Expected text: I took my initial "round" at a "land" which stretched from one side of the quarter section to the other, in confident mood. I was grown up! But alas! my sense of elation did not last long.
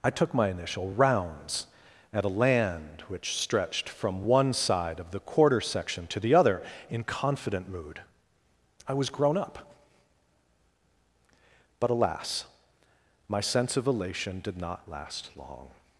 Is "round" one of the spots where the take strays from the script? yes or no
yes